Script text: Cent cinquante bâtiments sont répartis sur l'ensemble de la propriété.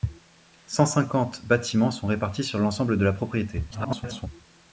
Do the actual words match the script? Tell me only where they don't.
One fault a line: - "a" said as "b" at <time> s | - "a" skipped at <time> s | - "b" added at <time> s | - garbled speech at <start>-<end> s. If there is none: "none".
- garbled speech at 3.7-4.3 s